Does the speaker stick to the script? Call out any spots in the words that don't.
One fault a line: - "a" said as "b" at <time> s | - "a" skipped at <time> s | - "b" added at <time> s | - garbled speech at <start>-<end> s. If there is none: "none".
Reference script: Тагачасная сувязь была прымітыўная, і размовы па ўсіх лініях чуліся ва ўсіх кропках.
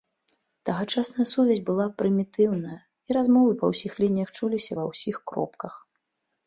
none